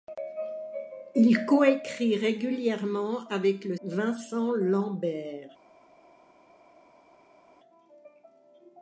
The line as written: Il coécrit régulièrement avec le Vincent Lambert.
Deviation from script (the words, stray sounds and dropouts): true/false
false